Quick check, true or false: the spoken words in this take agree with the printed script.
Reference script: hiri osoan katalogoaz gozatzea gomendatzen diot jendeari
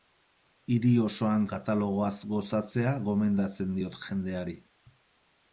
true